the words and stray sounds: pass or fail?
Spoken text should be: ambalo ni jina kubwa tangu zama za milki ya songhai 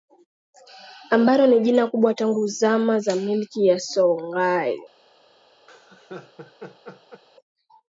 fail